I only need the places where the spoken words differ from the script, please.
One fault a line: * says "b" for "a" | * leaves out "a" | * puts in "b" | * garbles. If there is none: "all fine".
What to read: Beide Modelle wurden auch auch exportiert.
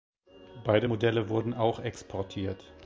* leaves out "auch"